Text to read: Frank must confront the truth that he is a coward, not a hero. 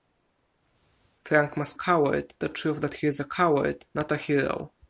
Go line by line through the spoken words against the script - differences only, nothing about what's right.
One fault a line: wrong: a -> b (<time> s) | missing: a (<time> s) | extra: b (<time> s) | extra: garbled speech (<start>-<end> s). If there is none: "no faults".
wrong: confront -> coward (1.7 s)